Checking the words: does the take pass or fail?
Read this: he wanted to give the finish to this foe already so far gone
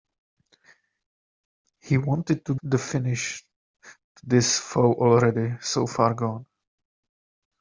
fail